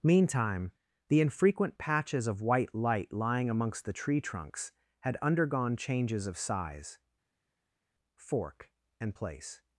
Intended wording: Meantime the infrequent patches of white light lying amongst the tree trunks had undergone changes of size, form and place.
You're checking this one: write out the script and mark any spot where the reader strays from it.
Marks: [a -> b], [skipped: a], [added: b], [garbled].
Meantime the infrequent patches of white light lying amongst the tree trunks had undergone changes of size, [form -> fork] and place.